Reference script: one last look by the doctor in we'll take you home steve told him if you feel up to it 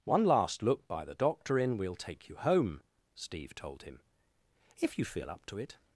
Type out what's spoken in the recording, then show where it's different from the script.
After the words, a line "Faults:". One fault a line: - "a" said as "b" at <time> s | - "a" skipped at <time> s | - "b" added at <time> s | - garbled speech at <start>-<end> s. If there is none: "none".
one last look by the doctor in we'll take you home steve told him if you feel up to it
Faults:
none